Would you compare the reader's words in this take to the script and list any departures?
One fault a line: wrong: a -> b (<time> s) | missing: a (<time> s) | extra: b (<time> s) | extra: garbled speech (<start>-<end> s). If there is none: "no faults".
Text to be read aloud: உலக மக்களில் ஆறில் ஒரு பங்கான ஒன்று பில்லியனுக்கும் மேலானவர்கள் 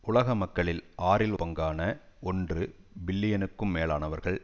missing: ஒரு (1.3 s)